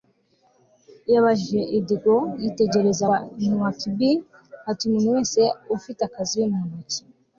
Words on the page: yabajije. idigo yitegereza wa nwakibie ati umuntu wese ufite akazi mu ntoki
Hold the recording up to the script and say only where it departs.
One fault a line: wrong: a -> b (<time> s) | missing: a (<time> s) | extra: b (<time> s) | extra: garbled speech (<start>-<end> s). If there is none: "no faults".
no faults